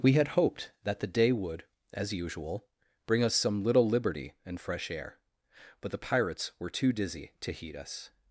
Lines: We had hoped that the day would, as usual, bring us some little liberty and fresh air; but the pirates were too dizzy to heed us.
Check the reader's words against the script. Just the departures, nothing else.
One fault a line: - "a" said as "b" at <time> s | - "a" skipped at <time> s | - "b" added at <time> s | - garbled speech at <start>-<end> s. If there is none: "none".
none